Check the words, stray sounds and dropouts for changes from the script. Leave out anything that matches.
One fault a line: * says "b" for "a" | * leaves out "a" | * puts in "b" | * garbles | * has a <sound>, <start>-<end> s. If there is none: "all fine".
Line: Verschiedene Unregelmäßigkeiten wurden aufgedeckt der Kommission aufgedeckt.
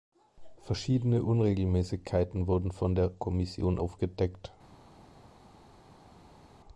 * says "von" for "aufgedeckt"